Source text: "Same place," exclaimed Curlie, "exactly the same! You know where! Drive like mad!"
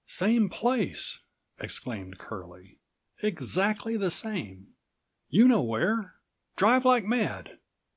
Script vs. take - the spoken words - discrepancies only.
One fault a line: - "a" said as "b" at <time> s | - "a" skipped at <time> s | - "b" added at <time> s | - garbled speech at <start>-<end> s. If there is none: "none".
none